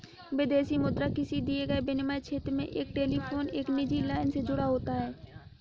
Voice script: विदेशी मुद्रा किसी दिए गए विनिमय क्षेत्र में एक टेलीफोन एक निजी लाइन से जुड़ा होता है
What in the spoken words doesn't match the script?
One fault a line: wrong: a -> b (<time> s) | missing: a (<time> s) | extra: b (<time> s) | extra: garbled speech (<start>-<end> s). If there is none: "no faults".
no faults